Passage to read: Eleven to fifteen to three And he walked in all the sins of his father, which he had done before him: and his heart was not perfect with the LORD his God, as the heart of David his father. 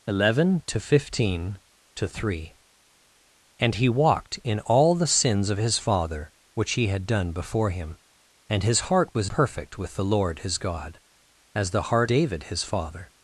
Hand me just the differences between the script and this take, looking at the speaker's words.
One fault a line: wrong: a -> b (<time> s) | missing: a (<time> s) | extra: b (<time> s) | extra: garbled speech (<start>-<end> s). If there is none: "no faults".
missing: not (9.3 s)
missing: of (12.1 s)